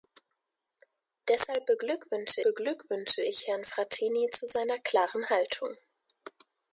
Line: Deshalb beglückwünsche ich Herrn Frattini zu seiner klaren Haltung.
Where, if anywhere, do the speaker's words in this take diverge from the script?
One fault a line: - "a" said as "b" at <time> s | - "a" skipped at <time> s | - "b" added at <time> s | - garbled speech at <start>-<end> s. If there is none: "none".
- "beglückwünsche" added at 2.4 s